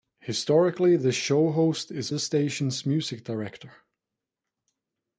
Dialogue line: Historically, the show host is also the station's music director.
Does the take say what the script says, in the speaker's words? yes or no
no